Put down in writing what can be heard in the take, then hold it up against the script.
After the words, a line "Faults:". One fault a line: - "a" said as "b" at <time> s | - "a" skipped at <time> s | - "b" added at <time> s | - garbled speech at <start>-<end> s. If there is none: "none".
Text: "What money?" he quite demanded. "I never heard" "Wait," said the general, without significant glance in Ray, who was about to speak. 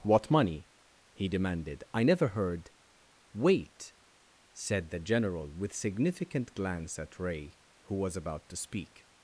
"What money?" he demanded. "I never heard" "Wait," said the general, with significant glance at Ray, who was about to speak.
Faults:
- "quite" skipped at 1.3 s
- "without" said as "with" at 5.5 s
- "in" said as "at" at 7.0 s